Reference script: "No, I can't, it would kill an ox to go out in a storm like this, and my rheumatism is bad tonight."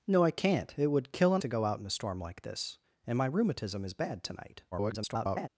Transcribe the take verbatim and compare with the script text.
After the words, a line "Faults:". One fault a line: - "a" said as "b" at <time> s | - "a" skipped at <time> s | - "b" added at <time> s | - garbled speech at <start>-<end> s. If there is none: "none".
"No, I can't, it would kill an to go out in a storm like this, and my rheumatism is bad tonight." [garbled]
Faults:
- "ox" skipped at 1.4 s
- garbled speech at 4.7-5.5 s